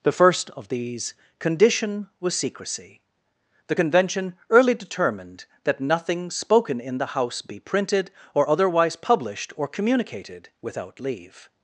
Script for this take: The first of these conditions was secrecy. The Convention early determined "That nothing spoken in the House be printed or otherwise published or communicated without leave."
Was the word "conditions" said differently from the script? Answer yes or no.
yes